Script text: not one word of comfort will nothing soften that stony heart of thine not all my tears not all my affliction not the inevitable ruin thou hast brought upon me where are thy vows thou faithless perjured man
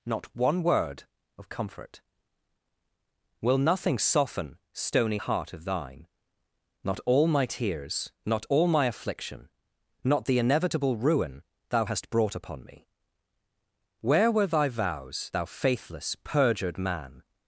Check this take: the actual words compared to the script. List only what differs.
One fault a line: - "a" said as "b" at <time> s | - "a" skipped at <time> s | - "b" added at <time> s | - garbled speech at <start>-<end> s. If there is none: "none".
- "that" skipped at 4.6 s
- "are" said as "were" at 14.3 s